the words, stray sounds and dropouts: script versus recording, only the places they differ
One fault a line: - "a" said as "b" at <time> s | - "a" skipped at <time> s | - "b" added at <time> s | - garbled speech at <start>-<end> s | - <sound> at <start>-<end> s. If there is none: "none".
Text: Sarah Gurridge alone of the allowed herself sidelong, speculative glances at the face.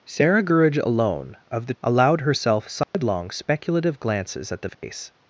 - dropout at 2.8-2.9 s
- dropout at 4.7-4.8 s